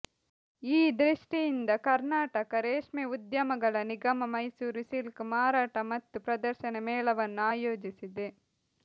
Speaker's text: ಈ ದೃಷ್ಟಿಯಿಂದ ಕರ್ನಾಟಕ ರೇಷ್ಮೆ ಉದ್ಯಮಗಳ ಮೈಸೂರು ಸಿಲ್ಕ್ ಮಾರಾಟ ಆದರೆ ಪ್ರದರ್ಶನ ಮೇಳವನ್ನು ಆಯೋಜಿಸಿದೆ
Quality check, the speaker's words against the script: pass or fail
fail